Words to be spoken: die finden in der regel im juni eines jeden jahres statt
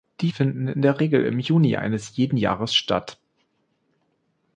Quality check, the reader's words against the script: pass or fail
pass